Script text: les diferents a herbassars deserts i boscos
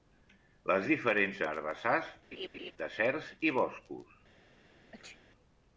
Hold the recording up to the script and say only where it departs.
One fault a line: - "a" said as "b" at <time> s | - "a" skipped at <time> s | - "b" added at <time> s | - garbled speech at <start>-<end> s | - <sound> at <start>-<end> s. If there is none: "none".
- laugh at 2.3-2.7 s
- sneeze at 4.9-5.2 s